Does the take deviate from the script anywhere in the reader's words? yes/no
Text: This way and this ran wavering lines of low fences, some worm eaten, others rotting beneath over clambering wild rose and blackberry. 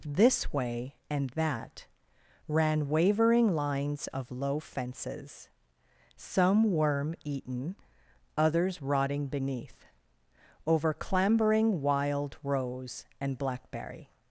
yes